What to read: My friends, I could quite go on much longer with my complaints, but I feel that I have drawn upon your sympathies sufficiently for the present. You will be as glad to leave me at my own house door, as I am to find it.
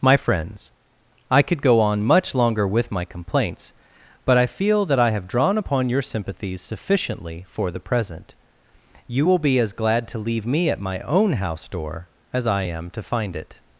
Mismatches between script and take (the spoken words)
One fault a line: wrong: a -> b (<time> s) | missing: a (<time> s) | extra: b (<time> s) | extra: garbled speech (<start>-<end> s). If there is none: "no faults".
missing: quite (1.6 s)